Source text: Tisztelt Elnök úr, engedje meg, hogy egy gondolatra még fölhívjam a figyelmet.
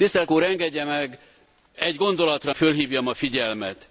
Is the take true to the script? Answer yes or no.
no